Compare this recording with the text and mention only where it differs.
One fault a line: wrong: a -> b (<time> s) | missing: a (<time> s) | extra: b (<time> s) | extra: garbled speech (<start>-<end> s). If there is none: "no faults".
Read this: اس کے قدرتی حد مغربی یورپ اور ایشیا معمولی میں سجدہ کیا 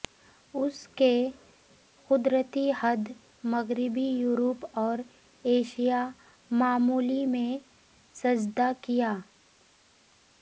no faults